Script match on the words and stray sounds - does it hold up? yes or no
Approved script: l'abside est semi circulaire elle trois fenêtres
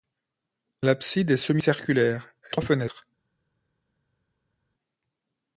yes